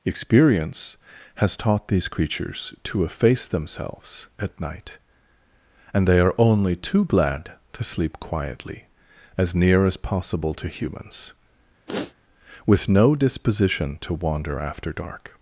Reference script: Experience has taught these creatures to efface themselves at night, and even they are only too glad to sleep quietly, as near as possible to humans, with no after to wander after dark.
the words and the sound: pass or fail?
fail